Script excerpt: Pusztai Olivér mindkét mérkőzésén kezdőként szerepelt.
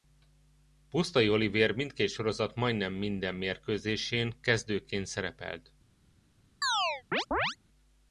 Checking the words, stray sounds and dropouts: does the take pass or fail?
fail